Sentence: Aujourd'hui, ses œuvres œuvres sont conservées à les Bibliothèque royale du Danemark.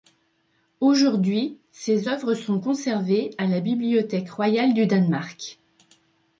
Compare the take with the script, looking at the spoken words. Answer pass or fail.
fail